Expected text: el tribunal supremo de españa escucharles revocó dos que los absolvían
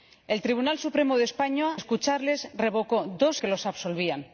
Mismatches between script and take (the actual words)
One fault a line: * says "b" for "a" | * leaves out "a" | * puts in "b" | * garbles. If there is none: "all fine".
all fine